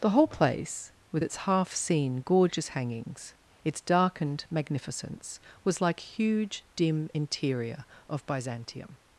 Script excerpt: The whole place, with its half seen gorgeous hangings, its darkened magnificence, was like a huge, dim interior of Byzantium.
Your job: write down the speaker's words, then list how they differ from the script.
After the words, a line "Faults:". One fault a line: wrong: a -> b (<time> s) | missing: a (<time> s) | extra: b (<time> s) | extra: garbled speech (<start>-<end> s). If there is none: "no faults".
The whole place, with its half seen gorgeous hangings, its darkened magnificence, was like huge, dim interior of Byzantium.
Faults:
missing: a (6.0 s)